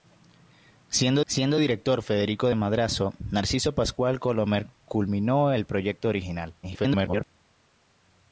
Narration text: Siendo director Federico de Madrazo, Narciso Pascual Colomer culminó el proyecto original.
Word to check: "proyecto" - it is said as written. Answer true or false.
true